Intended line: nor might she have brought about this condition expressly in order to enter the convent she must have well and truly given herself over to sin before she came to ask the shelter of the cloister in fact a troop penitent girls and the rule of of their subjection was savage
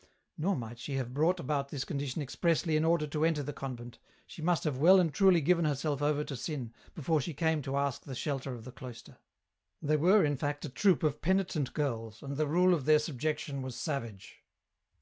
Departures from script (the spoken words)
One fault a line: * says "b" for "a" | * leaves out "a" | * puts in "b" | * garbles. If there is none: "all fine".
* puts in "they were"
* puts in "of"
* leaves out "of"